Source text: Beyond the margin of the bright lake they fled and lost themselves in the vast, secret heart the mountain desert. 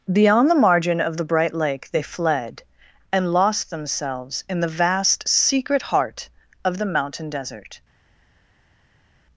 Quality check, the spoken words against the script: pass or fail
fail